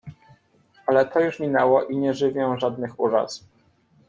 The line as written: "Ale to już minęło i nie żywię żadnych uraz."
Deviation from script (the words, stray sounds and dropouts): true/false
false